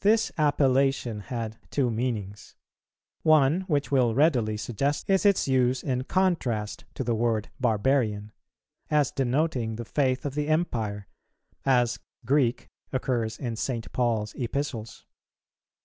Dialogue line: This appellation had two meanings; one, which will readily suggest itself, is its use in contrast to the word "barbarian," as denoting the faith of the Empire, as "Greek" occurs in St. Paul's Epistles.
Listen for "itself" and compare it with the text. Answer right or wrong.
wrong